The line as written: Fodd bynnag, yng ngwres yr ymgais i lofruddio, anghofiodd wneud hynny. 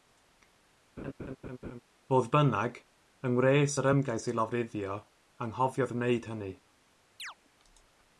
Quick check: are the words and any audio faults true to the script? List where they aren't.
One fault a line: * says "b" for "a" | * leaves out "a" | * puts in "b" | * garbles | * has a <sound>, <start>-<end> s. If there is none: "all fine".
* has a laugh, 1.0-1.8 s
* has a chirp, 7.2-7.3 s